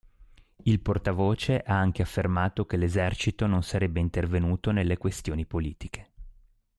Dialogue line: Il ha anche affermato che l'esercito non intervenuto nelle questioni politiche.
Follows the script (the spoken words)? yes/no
no